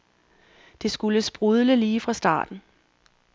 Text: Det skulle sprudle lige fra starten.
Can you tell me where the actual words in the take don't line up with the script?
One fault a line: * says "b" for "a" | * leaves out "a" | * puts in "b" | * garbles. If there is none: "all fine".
all fine